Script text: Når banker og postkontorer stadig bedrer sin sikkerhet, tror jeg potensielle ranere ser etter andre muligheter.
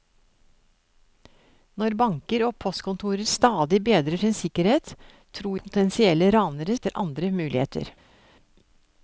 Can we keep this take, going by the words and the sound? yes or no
no